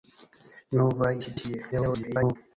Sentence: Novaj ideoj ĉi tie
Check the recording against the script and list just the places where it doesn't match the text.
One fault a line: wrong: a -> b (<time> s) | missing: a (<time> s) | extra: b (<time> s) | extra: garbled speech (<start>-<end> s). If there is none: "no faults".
missing: ideoj (1.1 s)
extra: garbled speech (1.7-2.4 s)